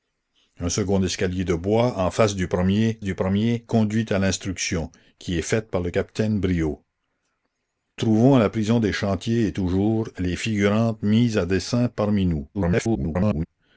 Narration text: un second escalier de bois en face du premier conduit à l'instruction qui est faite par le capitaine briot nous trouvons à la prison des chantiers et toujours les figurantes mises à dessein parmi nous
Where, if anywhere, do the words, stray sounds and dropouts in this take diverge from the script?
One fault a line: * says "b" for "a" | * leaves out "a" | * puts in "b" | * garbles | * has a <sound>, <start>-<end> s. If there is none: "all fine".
* puts in "du premier"
* leaves out "nous"
* garbles